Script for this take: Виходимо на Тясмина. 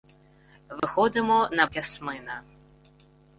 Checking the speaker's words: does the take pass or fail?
pass